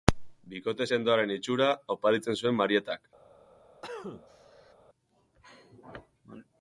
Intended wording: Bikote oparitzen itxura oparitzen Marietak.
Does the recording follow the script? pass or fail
fail